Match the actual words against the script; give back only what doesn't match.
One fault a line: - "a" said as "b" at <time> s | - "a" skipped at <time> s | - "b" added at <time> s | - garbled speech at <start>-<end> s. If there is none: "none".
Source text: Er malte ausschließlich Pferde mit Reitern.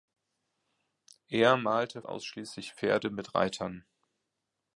none